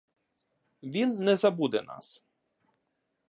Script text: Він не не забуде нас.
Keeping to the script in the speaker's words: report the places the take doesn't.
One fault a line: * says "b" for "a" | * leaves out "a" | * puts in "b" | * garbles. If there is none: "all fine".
* leaves out "не"